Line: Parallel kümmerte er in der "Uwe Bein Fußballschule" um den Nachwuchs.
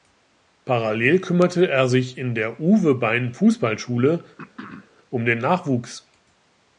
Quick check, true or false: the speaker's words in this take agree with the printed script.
false